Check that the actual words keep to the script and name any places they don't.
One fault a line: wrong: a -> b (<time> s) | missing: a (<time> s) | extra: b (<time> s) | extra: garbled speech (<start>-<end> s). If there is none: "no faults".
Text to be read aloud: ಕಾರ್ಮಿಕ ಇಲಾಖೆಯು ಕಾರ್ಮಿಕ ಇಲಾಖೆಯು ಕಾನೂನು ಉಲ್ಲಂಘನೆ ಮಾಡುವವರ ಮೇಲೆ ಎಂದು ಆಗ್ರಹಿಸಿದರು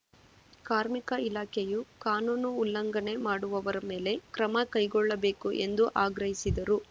missing: ಕಾರ್ಮಿಕ ಇಲಾಖೆಯು (1.8 s)
extra: ಕ್ರಮ ಕೈಗೊಳ್ಳಬೇಕು (4.3 s)